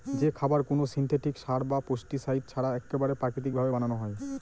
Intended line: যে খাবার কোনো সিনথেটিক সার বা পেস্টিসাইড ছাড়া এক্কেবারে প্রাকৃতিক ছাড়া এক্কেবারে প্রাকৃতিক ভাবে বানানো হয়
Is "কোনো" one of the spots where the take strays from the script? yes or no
no